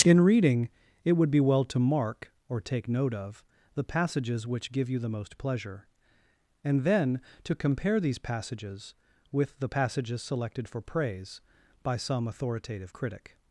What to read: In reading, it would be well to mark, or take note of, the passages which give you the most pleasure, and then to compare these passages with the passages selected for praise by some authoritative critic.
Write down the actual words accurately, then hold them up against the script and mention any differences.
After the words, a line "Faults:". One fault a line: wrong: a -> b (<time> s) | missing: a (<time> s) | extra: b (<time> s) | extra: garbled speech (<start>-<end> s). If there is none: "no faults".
In reading, it would be well to mark, or take note of, the passages which give you the most pleasure, and then to compare these passages with the passages selected for praise by some authoritative critic.
Faults:
no faults